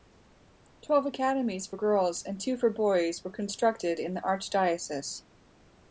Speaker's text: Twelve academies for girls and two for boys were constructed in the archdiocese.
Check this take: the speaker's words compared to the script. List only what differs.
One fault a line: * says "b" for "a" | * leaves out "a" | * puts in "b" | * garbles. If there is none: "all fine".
all fine